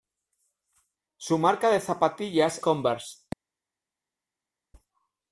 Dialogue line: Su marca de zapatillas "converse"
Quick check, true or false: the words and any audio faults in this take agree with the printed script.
true